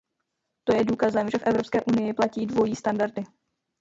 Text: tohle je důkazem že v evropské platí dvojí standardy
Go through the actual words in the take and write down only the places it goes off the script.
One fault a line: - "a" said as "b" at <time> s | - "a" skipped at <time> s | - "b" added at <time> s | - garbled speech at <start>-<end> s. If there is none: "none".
- "tohle" said as "to" at 0.6 s
- "unii" added at 1.8 s